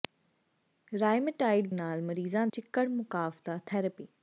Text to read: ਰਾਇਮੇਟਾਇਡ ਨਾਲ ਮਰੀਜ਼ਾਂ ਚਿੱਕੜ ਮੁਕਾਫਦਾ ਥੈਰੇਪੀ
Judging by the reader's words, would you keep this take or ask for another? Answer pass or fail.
pass